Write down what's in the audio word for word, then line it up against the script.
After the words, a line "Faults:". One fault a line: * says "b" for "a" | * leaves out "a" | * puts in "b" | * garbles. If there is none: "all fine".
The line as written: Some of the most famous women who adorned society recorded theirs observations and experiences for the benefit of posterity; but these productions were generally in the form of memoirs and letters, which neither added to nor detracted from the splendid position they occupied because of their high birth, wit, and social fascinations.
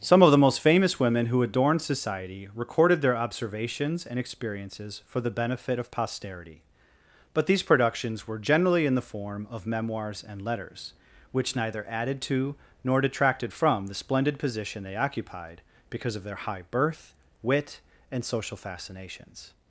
Some of the most famous women who adorned society recorded their observations and experiences for the benefit of posterity; but these productions were generally in the form of memoirs and letters, which neither added to nor detracted from the splendid position they occupied because of their high birth, wit, and social fascinations.
Faults:
* says "their" for "theirs"